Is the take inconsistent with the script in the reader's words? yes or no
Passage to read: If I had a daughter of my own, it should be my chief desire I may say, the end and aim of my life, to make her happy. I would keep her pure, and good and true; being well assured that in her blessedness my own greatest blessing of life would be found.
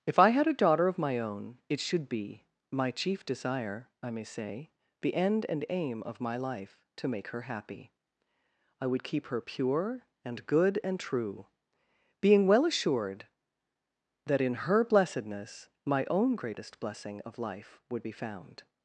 no